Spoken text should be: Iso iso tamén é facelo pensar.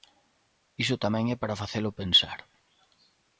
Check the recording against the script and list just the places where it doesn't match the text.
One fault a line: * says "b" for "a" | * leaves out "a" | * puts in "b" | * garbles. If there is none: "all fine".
* leaves out "iso"
* puts in "para"